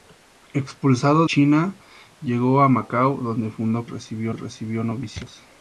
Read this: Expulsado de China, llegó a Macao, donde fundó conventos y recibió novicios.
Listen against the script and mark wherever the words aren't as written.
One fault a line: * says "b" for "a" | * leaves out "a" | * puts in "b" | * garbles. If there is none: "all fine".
* leaves out "de"
* says "recibió" for "conventos"